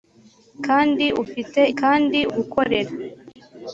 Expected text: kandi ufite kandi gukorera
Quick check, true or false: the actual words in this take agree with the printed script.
true